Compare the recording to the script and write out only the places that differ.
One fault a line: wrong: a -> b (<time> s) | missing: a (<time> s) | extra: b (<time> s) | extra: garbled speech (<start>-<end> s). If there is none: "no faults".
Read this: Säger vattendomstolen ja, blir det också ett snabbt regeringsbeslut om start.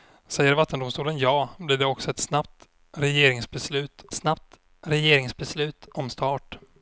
extra: snabbt regeringsbeslut (4.1 s)